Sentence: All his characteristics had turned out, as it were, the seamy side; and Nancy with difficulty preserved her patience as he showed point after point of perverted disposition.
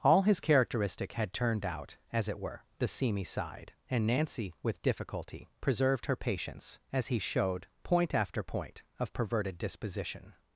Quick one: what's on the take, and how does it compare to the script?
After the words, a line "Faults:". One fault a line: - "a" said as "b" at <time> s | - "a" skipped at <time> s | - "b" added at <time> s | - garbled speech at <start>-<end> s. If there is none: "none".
All his characteristic had turned out, as it were, the seamy side; and Nancy with difficulty preserved her patience as he showed point after point of perverted disposition.
Faults:
- "characteristics" said as "characteristic" at 0.4 s